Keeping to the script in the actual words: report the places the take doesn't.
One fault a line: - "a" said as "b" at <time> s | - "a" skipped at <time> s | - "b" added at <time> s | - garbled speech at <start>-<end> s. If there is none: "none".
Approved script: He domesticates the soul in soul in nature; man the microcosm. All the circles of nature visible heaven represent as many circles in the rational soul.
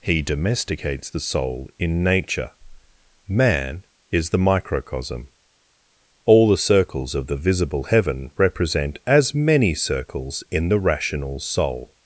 - "soul in" skipped at 2.0 s
- "is" added at 4.1 s
- "nature" said as "the" at 7.3 s